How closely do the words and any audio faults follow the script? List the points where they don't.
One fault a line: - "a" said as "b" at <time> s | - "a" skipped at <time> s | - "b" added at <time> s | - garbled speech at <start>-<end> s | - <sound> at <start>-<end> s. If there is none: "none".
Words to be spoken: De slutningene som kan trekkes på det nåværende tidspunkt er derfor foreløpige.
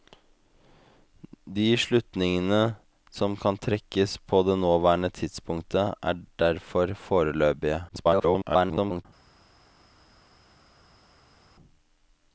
- garbled speech at 7.9-9.1 s